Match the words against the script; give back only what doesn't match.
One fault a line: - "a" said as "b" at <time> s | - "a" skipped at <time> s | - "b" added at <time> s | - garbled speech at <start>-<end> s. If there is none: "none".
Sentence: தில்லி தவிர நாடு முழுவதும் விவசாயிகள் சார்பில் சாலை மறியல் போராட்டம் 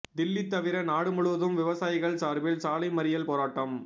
none